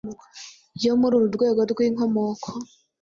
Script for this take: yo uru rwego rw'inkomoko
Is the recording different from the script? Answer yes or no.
yes